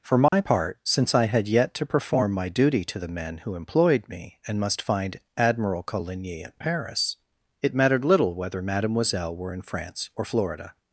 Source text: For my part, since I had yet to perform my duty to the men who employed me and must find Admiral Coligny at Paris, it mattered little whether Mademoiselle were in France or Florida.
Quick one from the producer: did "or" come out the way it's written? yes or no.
yes